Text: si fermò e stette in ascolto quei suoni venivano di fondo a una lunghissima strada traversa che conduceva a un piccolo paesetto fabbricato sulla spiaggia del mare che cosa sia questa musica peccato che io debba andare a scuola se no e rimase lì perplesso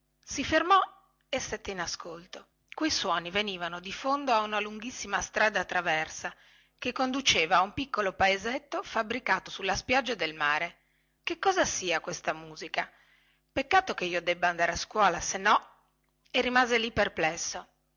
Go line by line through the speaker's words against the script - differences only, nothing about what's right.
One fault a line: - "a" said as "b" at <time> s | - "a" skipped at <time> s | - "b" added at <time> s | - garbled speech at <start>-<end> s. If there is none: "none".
none